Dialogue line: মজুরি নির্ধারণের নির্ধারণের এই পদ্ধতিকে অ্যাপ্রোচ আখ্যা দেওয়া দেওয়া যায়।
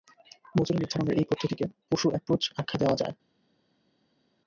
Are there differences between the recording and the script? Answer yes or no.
yes